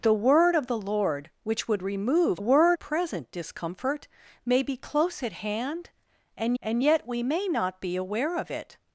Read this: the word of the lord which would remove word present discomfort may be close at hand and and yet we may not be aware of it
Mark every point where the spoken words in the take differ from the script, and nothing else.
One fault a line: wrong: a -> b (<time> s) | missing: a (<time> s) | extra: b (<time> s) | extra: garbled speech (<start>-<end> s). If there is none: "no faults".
no faults